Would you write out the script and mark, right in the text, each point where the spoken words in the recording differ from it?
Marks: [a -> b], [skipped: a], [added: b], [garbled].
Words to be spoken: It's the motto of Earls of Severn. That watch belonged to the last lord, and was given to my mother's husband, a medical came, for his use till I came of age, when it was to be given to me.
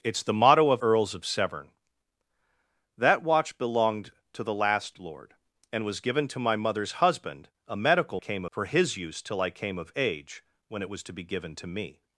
It's the motto of Earls of Severn. That watch belonged to the last lord, and was given to my mother's husband, a medical came, for his use till I came of age, when it was to be given to me.